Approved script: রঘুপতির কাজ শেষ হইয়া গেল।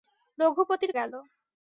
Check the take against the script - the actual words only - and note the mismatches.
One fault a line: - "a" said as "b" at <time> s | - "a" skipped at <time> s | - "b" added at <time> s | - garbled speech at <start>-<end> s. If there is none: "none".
- "কাজ শেষ হইয়া" skipped at 0.9 s